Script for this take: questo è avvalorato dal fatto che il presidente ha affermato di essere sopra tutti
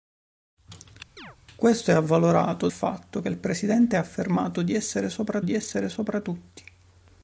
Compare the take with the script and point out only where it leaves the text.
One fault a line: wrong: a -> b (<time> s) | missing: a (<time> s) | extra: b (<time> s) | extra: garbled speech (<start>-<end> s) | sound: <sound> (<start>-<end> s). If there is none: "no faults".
sound: chirp (1.2-1.4 s)
missing: dal (2.7 s)
extra: di essere sopra (5.4 s)